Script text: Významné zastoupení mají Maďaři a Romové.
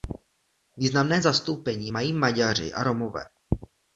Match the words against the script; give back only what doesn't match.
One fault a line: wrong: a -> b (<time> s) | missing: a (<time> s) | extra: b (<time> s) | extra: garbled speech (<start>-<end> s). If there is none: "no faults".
no faults